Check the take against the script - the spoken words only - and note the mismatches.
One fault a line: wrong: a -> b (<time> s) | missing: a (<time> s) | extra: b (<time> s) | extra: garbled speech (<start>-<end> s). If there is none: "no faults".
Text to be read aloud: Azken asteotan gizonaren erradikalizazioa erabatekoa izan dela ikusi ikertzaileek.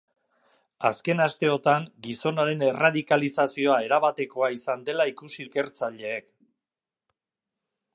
no faults